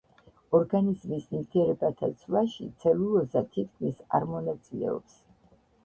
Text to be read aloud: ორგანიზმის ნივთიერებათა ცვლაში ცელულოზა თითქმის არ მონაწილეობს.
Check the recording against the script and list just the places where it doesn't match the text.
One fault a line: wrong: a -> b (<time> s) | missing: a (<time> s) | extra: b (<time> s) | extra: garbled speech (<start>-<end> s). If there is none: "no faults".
no faults